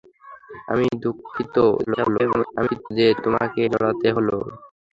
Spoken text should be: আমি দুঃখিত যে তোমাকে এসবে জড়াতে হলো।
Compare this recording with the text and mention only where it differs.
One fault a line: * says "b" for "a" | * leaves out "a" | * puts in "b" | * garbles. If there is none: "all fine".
* garbles
* leaves out "এসবে"